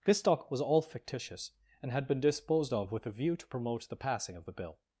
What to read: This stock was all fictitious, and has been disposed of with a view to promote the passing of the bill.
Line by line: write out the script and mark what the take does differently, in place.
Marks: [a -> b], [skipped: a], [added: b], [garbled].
This stock was all fictitious, and [has -> had] been disposed of with a view to promote the passing of the bill.